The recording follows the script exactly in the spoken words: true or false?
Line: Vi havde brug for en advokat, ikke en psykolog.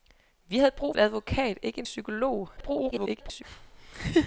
false